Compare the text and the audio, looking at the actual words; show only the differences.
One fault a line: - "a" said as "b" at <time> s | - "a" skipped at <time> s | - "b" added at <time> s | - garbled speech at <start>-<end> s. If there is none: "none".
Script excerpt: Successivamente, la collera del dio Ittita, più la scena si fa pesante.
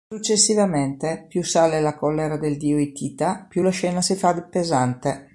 - "più sale" added at 1.3 s